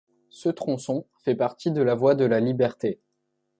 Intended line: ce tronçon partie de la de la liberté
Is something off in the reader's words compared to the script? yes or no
yes